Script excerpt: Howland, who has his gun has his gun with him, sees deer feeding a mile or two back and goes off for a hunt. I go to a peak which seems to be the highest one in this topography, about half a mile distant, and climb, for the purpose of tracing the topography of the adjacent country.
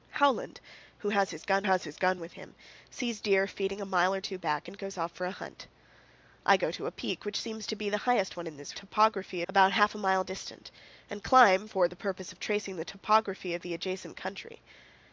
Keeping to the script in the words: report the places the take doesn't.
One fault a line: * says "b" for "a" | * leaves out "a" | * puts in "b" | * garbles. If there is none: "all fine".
all fine